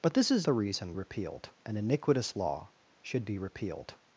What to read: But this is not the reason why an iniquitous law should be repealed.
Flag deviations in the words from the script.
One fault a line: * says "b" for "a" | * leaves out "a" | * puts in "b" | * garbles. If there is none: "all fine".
* leaves out "not"
* says "repealed" for "why"